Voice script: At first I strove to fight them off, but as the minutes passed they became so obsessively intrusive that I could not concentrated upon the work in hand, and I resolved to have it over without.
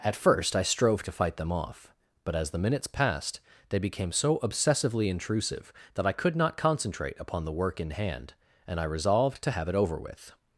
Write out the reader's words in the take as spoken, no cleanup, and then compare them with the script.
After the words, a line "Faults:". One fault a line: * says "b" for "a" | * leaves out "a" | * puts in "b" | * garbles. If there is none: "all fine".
At first I strove to fight them off, but as the minutes passed they became so obsessively intrusive that I could not concentrate upon the work in hand, and I resolved to have it over with.
Faults:
* says "concentrate" for "concentrated"
* says "with" for "without"